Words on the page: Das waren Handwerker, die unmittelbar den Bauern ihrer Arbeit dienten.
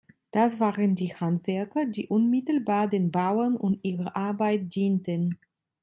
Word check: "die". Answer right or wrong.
right